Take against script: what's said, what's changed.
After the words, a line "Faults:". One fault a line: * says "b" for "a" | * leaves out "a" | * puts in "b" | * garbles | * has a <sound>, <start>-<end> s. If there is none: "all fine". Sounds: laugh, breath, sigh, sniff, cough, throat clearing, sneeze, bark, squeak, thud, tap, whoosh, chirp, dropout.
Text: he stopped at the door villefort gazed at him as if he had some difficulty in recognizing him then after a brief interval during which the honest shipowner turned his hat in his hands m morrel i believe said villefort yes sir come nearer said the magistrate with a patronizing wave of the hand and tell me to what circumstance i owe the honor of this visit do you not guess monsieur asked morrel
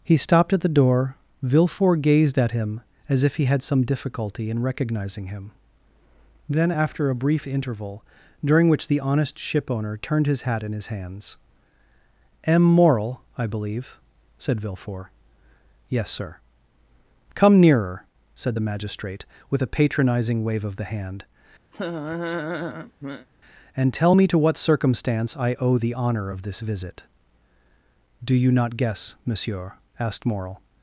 he stopped at the door villefort gazed at him as if he had some difficulty in recognizing him then after a brief interval during which the honest shipowner turned his hat in his hands m morrel i believe said villefort yes sir come nearer said the magistrate with a patronizing wave of the hand and tell me to what circumstance i owe the honor of this visit do you not guess monsieur asked morrel
Faults:
* has a laugh, 21.7-23.3 s